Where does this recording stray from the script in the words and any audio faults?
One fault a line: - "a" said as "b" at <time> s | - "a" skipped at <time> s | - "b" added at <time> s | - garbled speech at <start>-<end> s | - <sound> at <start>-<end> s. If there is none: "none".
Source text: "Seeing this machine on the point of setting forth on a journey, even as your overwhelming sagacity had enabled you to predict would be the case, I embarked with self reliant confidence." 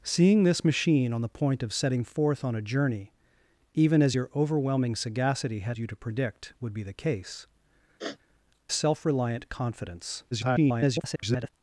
- "enabled" skipped at 5.8 s
- "I embarked with" skipped at 7.4 s
- sniff at 8.0-8.2 s
- garbled speech at 10.3-11.5 s